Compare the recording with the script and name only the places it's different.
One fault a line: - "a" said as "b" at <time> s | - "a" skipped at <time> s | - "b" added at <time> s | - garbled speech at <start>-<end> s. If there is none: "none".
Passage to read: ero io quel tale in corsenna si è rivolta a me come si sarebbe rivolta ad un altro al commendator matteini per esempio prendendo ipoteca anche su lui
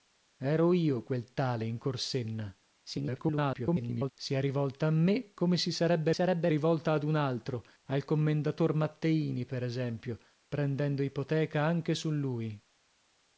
- garbled speech at 2.8-4.1 s
- "sarebbe" added at 6.1 s